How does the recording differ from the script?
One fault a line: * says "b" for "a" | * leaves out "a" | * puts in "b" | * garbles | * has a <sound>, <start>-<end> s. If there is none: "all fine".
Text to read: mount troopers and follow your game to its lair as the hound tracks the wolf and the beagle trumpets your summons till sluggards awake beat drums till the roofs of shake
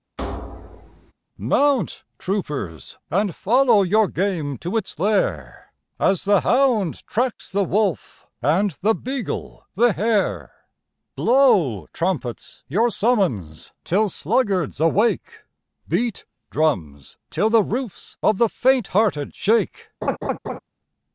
* has a thud, 0.2-1.1 s
* puts in "the hare blow"
* puts in "the faint hearted"
* has a laugh, 20.0-20.6 s